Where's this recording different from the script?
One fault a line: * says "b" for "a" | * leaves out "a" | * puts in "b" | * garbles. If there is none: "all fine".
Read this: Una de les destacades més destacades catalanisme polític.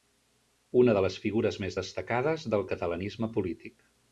* says "figures" for "destacades"
* puts in "del"